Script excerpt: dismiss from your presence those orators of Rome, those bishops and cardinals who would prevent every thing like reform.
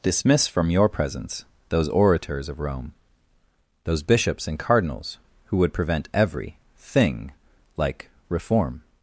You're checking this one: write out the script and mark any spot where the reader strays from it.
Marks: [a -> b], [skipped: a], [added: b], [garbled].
dismiss from your presence those orators of Rome, those bishops and cardinals who would prevent every thing like reform.